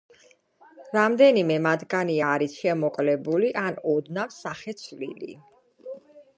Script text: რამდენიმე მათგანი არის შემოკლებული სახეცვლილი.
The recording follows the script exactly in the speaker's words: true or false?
false